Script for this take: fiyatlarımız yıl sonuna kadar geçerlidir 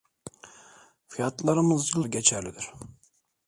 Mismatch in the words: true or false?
true